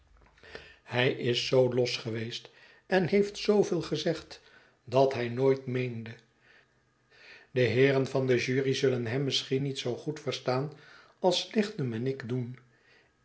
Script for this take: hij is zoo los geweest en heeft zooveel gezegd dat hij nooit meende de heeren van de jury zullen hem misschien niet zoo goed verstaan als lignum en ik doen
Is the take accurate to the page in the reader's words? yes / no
yes